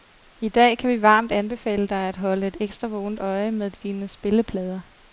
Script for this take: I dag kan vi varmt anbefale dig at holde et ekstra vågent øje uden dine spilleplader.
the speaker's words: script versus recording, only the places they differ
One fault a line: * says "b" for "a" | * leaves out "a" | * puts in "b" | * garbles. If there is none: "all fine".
* says "med" for "uden"